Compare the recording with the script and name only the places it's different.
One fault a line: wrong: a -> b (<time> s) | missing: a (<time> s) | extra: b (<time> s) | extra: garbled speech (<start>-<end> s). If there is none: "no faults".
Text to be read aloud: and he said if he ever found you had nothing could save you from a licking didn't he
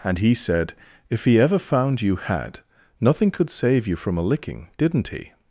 no faults